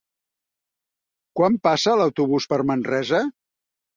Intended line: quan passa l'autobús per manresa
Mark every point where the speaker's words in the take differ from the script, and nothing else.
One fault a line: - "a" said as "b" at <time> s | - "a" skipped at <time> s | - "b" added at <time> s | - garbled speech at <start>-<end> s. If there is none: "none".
none